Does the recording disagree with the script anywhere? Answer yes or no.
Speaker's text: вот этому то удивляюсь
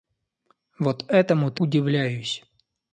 no